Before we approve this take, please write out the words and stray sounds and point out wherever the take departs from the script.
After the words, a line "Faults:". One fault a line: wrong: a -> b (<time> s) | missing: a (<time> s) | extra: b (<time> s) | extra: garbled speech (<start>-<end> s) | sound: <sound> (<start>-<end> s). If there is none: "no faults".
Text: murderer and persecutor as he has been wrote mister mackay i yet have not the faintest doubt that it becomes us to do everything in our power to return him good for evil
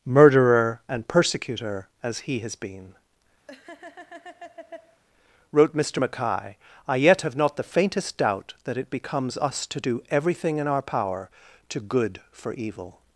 murderer and persecutor as he has been wrote mister mackay i yet have not the faintest doubt that it becomes us to do everything in our power to good for evil
Faults:
sound: laugh (3.5-5.0 s)
missing: return him (11.8 s)